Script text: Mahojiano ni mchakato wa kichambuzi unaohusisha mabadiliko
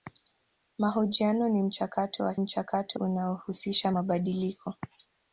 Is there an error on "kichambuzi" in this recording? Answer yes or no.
yes